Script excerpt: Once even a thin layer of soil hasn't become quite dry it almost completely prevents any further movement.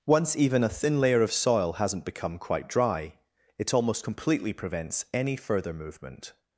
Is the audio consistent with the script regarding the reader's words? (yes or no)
yes